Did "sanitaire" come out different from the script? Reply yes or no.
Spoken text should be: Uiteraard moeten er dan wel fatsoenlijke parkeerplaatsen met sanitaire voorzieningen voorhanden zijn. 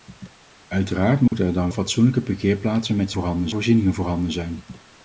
yes